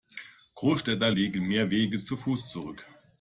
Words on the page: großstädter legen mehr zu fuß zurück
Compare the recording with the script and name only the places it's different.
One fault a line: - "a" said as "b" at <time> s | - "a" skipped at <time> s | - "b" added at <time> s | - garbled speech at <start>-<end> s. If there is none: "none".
- "wege" added at 1.7 s